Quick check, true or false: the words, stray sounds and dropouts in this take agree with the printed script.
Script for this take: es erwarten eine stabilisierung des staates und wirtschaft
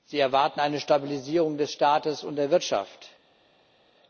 false